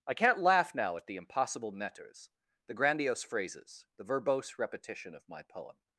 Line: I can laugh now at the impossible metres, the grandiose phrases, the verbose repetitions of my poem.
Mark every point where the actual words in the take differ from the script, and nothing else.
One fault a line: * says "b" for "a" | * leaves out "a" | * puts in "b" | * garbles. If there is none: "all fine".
* says "can't" for "can"
* says "repetition" for "repetitions"